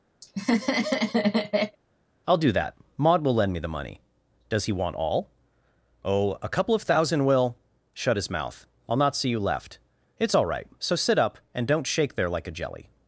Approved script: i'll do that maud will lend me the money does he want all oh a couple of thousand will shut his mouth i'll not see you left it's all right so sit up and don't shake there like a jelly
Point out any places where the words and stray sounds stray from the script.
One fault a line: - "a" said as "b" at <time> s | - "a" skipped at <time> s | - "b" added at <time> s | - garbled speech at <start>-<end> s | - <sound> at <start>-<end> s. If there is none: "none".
- laugh at 0.2-1.8 s